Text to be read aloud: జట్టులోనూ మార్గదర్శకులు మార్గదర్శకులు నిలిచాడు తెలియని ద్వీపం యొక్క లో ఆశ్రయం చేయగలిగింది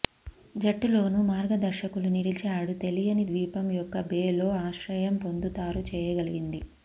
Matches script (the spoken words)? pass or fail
fail